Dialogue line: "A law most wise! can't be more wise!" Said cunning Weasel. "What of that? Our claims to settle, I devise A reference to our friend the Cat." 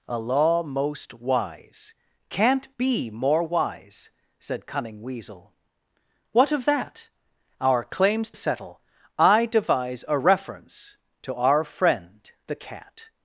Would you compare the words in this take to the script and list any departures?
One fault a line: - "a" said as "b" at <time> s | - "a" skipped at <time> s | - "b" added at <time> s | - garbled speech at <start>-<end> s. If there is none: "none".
- "to" skipped at 8.3 s